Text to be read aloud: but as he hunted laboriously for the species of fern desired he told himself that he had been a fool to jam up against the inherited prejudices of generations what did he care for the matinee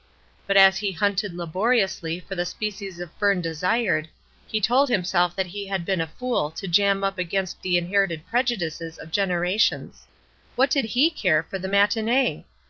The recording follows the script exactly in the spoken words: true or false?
true